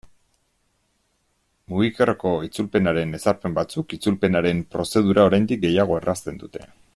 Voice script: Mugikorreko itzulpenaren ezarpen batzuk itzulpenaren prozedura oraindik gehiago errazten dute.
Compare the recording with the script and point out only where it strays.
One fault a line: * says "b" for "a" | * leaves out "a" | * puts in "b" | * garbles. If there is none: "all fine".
all fine